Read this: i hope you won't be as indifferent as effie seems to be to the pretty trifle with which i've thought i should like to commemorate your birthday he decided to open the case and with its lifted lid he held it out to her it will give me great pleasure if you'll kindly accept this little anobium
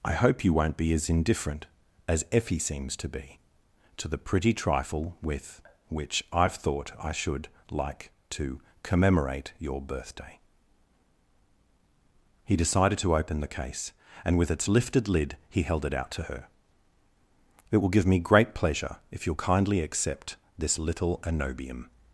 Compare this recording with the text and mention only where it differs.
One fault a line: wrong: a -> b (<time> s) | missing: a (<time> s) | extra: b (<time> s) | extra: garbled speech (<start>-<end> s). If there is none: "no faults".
no faults